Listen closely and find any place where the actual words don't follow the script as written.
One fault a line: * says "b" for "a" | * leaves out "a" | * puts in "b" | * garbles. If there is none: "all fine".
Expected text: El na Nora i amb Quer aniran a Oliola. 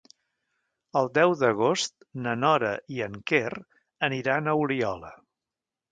* puts in "deu d'agost"
* says "en" for "amb"